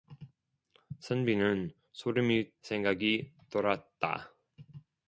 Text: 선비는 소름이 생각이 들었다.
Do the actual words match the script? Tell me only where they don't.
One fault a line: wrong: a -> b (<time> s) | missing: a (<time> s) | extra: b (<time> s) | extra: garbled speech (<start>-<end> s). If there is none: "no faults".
no faults